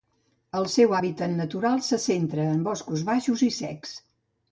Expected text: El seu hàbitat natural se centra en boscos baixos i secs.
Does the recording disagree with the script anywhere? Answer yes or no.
no